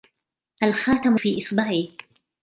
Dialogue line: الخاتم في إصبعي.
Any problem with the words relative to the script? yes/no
no